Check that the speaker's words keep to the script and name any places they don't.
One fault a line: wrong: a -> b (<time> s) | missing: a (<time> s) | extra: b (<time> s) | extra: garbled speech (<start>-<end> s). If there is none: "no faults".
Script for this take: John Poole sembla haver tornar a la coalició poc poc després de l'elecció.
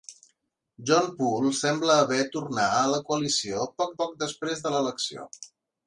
no faults